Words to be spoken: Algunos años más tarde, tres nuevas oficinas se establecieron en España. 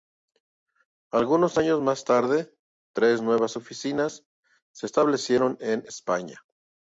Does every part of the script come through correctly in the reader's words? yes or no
yes